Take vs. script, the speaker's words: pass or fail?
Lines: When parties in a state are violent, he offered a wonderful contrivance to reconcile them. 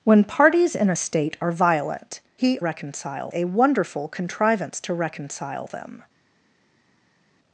fail